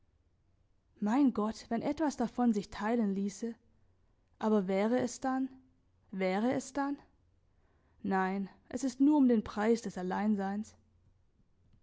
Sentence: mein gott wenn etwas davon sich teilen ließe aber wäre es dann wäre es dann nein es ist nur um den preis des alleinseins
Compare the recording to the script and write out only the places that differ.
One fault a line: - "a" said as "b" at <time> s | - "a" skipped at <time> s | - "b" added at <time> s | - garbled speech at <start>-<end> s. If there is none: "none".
none